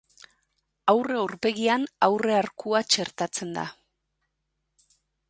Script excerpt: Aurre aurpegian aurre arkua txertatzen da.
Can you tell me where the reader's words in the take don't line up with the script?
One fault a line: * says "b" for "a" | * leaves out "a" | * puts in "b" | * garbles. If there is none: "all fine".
all fine